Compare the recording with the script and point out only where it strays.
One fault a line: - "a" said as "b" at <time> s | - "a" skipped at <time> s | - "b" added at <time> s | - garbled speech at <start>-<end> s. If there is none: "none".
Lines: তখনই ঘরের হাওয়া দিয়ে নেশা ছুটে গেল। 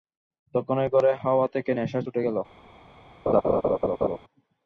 - "দিয়ে" said as "থেকে" at 1.5 s